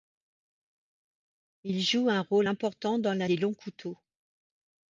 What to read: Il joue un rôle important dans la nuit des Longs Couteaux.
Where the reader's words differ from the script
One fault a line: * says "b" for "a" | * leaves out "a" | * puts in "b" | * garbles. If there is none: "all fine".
* leaves out "nuit"